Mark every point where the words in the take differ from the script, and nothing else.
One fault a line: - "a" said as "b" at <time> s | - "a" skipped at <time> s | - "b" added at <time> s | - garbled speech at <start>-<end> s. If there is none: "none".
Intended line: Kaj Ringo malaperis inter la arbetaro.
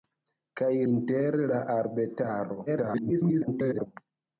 - "Ringo malaperis" skipped at 0.7 s
- garbled speech at 2.7-3.9 s